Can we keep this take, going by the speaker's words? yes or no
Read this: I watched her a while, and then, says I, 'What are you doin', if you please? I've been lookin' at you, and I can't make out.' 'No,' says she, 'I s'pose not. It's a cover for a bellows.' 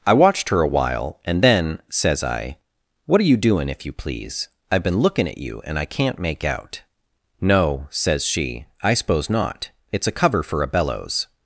yes